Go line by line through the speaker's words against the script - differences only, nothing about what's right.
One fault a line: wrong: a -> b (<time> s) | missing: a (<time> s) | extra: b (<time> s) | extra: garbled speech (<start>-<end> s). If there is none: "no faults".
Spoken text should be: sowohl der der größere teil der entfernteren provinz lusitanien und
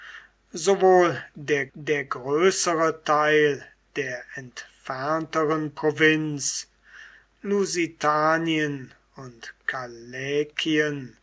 no faults